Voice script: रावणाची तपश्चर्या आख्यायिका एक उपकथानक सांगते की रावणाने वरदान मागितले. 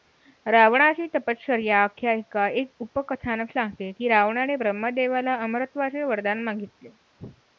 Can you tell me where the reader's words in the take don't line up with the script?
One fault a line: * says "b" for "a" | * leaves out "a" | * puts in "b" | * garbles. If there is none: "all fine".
* puts in "ब्रह्मदेवाला अमरत्वाचे"